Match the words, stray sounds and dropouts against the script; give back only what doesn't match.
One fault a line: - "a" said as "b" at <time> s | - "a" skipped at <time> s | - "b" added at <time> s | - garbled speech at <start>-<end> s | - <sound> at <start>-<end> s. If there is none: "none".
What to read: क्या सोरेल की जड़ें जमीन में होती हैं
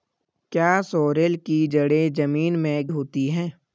none